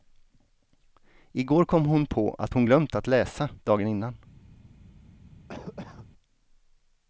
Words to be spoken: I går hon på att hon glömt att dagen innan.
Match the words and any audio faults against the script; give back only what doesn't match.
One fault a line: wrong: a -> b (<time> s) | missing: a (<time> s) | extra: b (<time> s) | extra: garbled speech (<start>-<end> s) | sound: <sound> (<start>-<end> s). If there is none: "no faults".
extra: kom (1.6 s)
extra: läsa (3.1 s)
sound: cough (5.5-6.1 s)